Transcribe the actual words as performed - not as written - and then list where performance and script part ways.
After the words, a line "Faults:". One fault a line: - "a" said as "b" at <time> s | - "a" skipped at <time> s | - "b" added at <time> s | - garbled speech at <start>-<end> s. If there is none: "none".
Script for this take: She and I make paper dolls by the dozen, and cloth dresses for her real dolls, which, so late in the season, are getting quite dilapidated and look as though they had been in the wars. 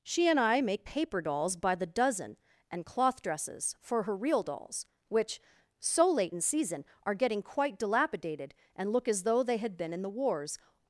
She and I make paper dolls by the dozen, and cloth dresses for her real dolls, which, so late in season, are getting quite dilapidated and look as though they had been in the wars.
Faults:
- "the" skipped at 6.4 s